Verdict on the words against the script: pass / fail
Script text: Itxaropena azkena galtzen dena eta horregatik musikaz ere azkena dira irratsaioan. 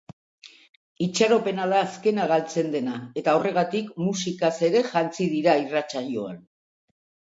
fail